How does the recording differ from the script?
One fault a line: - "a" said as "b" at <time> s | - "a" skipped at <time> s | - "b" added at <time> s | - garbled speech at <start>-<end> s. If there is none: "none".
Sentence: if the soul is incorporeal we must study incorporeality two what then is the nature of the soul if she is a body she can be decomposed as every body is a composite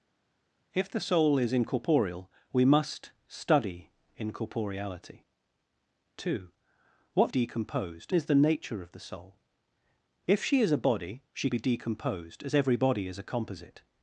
- "then" said as "decomposed" at 7.3 s
- "can" skipped at 11.5 s